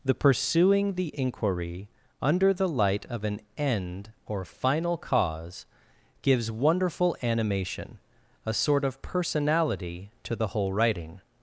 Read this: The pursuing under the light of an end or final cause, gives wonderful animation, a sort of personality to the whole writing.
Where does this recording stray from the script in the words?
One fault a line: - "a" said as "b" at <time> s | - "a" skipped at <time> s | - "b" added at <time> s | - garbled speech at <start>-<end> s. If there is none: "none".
- "the inquiry" added at 0.9 s